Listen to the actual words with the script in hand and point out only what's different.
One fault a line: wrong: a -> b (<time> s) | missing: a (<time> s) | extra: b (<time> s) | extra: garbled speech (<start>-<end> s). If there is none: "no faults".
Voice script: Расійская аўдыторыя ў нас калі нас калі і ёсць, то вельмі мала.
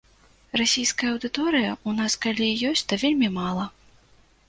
missing: нас калі (2.5 s)